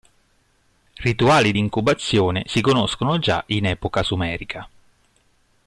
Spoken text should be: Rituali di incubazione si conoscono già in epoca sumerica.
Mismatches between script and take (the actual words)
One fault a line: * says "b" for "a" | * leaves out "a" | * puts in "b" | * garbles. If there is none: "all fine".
all fine